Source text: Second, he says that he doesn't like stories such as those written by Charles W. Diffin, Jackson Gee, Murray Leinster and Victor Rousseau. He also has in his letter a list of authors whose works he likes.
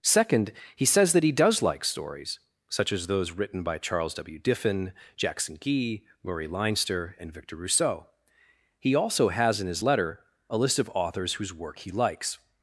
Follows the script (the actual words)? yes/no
no